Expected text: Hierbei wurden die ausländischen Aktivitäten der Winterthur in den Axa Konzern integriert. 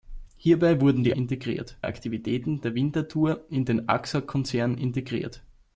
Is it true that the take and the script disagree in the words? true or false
true